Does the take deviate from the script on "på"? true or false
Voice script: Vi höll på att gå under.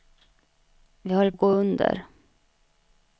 true